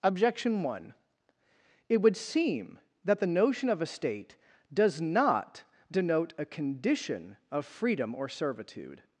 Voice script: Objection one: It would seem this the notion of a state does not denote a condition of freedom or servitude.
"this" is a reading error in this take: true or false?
true